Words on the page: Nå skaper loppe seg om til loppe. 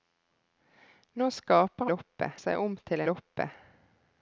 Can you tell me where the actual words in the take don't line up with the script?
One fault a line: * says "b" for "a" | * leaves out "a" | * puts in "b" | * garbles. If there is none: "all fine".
all fine